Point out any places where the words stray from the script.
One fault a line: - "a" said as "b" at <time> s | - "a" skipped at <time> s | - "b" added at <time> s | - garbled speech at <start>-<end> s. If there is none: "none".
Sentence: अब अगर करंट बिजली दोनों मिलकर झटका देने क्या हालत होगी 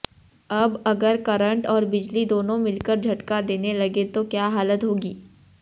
- "और" added at 1.7 s
- "लगें तो" added at 3.7 s